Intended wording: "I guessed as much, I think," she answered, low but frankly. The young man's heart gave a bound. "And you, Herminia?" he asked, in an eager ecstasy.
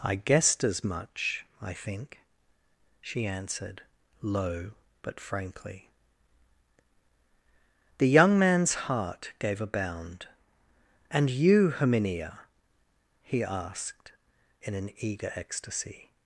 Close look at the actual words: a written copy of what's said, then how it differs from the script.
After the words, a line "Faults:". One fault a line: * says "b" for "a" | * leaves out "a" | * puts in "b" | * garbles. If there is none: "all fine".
"I guessed as much, I think," she answered, low but frankly. The young man's heart gave a bound. "And you, Herminia?" he asked, in an eager ecstasy.
Faults:
all fine